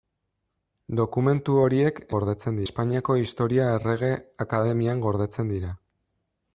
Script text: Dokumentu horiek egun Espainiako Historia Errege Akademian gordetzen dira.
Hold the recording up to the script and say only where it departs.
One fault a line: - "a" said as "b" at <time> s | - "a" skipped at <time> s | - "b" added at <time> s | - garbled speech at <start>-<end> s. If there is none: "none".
- "egun" said as "gordetzen" at 2.2 s